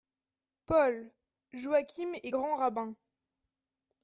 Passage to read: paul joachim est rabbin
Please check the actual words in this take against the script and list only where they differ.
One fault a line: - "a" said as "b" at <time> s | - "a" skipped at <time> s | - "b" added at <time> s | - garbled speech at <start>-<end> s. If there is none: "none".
- "grand" added at 2.3 s